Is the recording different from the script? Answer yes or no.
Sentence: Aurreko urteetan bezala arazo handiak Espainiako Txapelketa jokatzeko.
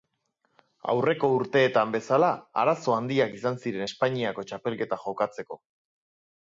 yes